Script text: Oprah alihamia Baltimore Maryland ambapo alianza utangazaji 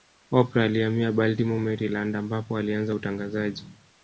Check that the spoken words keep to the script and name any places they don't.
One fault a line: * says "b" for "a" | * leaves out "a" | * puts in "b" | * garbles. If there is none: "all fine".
all fine